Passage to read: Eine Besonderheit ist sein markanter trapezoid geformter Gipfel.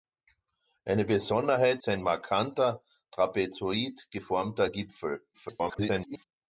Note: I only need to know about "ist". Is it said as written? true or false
false